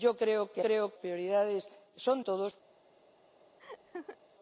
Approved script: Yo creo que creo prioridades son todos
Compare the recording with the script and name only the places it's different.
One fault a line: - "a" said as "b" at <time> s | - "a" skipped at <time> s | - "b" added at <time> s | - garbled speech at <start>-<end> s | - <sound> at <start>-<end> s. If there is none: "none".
- laugh at 3.6-4.2 s